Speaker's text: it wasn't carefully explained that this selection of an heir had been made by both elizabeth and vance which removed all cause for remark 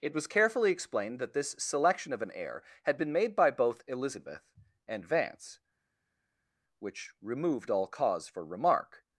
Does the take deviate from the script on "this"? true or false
false